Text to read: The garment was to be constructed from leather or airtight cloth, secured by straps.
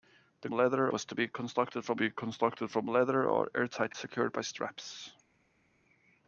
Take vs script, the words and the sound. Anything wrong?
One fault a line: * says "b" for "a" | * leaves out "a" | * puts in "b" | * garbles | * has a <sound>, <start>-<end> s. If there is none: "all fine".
* says "leather" for "garment"
* puts in "be constructed from"
* leaves out "cloth"